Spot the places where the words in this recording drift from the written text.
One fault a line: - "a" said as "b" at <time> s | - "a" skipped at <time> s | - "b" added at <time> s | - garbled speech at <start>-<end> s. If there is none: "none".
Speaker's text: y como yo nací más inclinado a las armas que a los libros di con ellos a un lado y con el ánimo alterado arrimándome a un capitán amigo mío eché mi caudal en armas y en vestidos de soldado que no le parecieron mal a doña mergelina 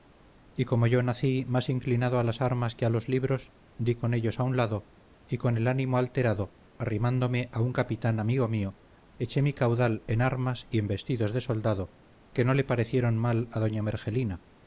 none